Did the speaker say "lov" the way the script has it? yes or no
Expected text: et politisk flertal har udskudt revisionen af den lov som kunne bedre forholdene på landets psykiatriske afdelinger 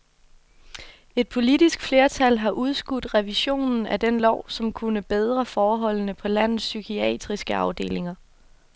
yes